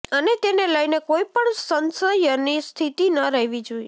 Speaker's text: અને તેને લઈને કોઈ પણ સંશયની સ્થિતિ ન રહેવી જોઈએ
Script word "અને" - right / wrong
right